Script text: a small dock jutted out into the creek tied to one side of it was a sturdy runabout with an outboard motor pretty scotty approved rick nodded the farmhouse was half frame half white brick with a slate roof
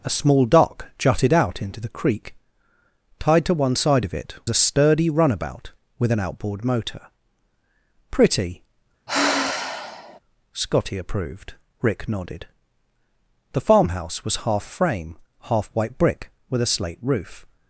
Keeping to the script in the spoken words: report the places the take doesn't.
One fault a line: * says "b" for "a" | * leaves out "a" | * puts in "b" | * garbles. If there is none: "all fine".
* leaves out "was"